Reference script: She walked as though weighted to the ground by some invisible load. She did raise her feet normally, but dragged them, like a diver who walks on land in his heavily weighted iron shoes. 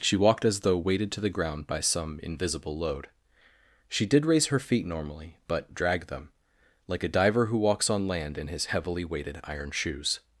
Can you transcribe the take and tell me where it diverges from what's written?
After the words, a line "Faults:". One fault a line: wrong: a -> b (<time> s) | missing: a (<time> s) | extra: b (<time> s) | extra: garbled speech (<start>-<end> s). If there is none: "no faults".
She walked as though weighted to the ground by some invisible load. She did raise her feet normally, but dragged them, like a diver who walks on land in his heavily weighted iron shoes.
Faults:
no faults